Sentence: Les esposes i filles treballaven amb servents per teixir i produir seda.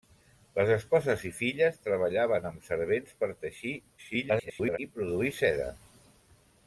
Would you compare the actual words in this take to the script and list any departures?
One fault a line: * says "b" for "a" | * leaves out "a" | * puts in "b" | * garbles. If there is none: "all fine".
* garbles